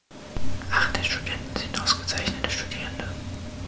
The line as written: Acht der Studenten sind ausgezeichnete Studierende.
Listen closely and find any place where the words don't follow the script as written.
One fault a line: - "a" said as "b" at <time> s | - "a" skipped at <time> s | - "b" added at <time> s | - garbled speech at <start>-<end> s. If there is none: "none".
none